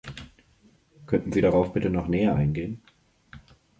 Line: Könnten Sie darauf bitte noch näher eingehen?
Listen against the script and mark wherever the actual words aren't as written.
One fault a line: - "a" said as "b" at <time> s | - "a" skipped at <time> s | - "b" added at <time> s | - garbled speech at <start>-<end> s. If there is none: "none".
none